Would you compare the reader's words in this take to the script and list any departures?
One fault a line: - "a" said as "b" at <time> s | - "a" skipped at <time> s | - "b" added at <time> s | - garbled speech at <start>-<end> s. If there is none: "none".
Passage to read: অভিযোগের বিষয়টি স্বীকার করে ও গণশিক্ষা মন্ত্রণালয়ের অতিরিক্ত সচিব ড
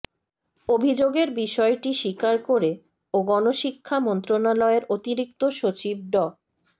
none